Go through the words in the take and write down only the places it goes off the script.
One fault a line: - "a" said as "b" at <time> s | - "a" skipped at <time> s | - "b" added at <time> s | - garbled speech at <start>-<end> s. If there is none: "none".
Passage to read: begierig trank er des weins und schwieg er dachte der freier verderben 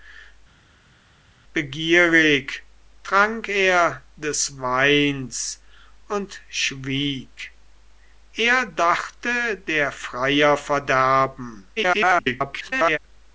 - garbled speech at 11.8-13.0 s